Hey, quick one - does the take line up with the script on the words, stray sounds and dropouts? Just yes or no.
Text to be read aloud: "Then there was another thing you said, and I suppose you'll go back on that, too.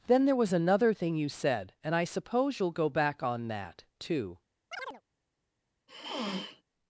no